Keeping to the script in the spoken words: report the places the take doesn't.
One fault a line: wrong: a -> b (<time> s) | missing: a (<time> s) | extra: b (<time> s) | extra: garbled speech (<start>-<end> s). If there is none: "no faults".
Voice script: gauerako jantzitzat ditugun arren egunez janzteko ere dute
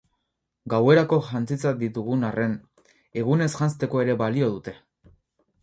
extra: balio (4.2 s)